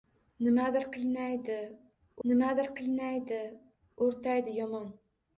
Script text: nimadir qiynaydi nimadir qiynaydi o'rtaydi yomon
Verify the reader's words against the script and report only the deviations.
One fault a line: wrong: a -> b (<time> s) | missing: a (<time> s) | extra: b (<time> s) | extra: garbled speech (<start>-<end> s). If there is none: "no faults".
no faults